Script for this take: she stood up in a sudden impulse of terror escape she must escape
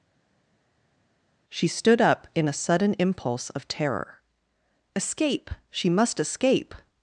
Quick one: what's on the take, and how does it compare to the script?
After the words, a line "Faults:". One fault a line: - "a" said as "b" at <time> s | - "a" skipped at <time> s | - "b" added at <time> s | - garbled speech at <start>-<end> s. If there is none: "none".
she stood up in a sudden impulse of terror escape she must escape
Faults:
none